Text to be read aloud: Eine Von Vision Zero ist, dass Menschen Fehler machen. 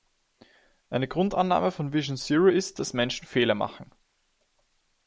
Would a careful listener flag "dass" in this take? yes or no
no